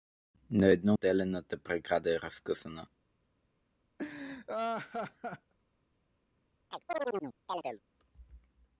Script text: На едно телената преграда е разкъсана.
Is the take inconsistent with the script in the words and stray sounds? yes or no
yes